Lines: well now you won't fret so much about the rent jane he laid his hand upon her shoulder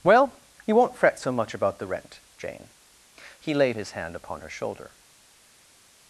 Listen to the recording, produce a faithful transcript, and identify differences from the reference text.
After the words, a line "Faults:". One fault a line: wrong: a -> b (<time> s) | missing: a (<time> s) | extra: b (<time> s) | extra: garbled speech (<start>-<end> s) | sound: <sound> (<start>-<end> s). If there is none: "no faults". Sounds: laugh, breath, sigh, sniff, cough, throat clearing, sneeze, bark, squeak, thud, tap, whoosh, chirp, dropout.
well you won't fret so much about the rent jane he laid his hand upon her shoulder
Faults:
missing: now (0.3 s)